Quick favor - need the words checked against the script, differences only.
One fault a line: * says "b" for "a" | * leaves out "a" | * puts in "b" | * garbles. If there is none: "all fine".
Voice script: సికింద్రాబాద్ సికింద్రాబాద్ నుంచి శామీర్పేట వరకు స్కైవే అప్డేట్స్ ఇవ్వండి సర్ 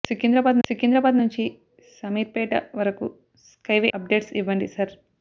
all fine